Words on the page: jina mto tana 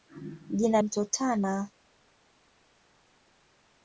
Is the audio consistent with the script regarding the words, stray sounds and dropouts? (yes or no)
yes